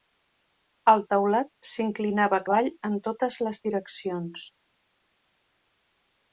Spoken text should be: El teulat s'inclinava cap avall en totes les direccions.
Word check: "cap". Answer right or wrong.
wrong